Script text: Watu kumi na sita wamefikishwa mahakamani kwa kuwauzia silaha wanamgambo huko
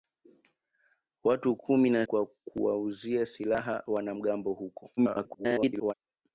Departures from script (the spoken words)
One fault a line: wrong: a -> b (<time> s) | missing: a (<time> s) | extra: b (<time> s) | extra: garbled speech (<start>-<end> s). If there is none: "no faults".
missing: sita wamefikishwa mahakamani (2.1 s)
extra: garbled speech (5.0-5.9 s)